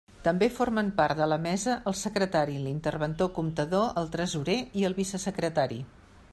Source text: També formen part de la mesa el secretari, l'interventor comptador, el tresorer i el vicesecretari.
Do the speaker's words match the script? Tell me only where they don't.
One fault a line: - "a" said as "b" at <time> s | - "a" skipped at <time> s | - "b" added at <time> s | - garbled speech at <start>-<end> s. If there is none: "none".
none